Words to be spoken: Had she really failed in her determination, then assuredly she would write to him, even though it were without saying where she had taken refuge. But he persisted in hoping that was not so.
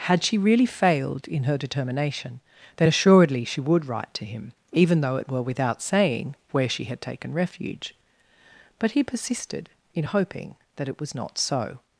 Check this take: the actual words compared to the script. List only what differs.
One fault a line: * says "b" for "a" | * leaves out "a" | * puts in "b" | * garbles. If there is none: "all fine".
* puts in "it"